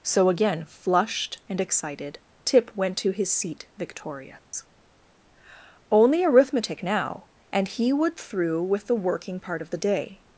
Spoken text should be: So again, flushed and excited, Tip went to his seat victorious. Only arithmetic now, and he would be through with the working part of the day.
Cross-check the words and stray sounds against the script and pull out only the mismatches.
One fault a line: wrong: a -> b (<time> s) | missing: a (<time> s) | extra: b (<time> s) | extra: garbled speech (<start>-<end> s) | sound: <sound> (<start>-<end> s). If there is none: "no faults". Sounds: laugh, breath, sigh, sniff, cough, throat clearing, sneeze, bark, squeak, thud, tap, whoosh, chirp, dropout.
sound: dropout (4.4-4.5 s)
missing: be (8.2 s)